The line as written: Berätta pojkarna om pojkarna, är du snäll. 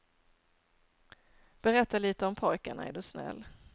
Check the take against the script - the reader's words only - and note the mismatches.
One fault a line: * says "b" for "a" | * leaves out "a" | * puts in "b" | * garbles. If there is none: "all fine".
* says "lite" for "pojkarna"